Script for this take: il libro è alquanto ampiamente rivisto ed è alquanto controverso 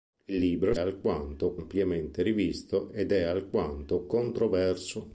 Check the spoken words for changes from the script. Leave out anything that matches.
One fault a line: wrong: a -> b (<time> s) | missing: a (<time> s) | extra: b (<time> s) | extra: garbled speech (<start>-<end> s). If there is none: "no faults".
no faults